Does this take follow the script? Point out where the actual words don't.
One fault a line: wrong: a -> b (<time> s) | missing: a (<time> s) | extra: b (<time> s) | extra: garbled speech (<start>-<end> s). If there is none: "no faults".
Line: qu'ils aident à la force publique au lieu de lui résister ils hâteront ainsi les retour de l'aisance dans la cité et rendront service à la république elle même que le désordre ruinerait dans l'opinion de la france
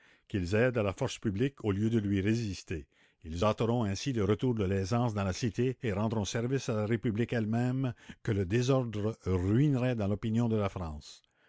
wrong: les -> le (4.1 s)